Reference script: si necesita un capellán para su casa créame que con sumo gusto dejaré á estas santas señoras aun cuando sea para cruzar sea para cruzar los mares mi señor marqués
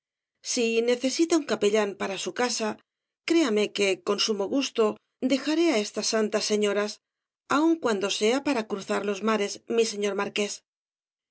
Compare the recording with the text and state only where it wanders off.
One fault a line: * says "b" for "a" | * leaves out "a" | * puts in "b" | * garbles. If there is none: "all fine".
* leaves out "sea para cruzar"